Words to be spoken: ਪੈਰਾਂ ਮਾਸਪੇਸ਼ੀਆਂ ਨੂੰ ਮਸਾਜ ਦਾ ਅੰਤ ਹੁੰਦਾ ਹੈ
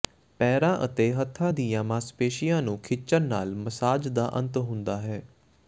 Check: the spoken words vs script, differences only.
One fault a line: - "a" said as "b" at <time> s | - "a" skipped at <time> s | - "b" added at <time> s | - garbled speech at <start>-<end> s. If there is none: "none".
- "ਅਤੇ ਹੱਥਾਂ ਦੀਆਂ" added at 0.8 s
- "ਖਿੱਚਣ ਨਾਲ" added at 2.8 s